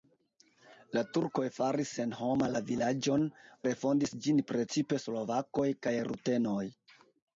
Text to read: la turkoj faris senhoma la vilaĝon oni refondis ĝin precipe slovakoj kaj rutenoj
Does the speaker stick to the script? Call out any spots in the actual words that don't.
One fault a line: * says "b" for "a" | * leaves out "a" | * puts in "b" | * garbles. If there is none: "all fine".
* leaves out "oni"